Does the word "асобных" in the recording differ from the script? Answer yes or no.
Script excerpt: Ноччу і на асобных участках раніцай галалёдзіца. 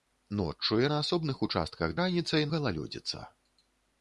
no